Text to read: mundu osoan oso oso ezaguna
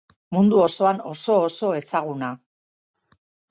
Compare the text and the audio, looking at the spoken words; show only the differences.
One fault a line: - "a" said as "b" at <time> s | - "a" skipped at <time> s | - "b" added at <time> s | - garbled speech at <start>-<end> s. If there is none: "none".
none